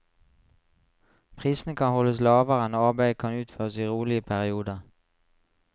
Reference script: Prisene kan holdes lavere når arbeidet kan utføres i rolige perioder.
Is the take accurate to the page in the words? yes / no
yes